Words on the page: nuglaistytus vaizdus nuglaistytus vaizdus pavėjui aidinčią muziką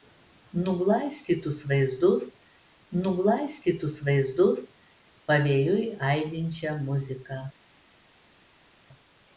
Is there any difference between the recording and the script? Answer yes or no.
no